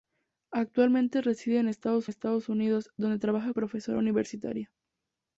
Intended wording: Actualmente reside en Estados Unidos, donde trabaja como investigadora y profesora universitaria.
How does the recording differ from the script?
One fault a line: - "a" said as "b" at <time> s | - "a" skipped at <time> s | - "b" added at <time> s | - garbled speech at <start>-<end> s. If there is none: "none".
- "Estados" added at 2.1 s
- "como investigadora y" skipped at 3.5 s